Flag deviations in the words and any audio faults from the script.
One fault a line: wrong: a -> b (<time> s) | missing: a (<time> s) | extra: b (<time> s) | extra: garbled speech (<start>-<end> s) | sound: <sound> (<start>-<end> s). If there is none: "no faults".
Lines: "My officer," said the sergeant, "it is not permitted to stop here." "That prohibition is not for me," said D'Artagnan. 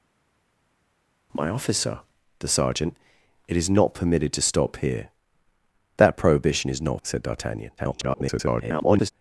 missing: said (2.0 s)
missing: for me (7.0 s)
extra: garbled speech (7.8-9.1 s)